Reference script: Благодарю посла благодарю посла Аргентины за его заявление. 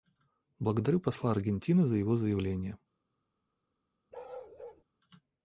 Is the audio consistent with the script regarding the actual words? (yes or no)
no